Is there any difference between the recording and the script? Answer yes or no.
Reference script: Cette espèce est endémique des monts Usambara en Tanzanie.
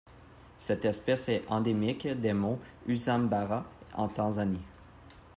no